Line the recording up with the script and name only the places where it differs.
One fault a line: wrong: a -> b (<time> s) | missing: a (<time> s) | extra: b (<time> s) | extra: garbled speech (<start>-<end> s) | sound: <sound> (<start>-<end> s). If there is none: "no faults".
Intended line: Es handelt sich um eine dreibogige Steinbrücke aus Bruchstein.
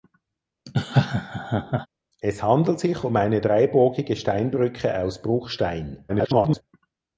sound: laugh (0.7-1.9 s)
extra: garbled speech (6.1-6.6 s)